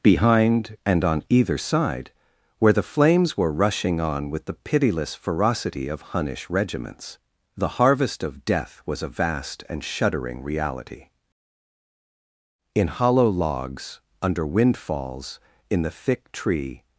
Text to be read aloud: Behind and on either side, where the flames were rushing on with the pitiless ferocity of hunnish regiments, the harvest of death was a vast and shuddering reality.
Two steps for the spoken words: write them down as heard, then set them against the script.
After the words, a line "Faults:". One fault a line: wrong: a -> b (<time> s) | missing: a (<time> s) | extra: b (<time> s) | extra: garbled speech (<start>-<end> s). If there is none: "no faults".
Behind and on either side, where the flames were rushing on with the pitiless ferocity of hunnish regiments, the harvest of death was a vast and shuddering reality. In hollow logs, under windfalls, in the thick tree
Faults:
extra: In hollow logs under windfalls in the thick tree (12.7 s)